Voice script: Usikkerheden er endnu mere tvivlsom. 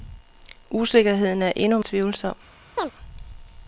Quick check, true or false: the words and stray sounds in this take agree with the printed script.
false